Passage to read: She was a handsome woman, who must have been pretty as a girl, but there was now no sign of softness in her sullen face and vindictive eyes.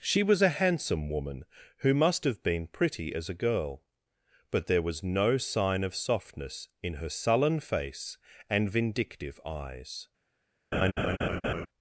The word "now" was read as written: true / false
false